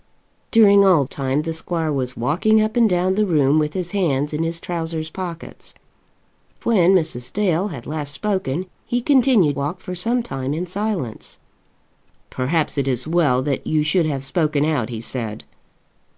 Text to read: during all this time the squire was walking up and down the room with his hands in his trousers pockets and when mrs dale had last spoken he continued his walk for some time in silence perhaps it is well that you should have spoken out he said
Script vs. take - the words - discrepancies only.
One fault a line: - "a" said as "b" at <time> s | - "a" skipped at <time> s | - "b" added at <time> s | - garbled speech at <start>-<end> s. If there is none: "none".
- "this" skipped at 1.1 s
- "and" skipped at 5.7 s
- "his" skipped at 9.6 s